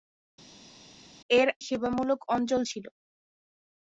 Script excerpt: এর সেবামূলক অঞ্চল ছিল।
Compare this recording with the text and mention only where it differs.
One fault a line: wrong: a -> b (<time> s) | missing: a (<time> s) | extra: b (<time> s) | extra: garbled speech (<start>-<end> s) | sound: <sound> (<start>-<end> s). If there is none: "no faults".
no faults